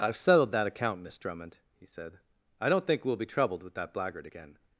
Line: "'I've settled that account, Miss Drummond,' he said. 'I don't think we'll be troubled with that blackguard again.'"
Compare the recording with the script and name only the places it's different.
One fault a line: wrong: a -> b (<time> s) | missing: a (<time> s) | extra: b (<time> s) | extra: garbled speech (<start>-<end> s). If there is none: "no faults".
no faults